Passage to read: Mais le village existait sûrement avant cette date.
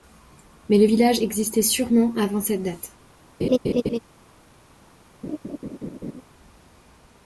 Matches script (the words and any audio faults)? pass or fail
fail